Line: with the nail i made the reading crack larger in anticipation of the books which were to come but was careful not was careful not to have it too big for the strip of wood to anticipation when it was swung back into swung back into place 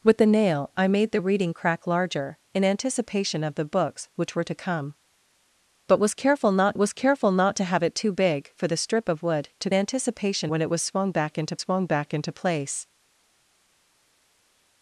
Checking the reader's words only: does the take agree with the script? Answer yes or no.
yes